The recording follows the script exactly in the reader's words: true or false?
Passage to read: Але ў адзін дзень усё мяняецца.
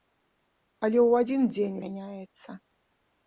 false